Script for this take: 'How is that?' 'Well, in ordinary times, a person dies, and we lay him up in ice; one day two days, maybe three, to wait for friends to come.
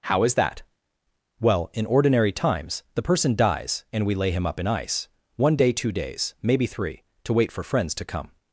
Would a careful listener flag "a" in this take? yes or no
yes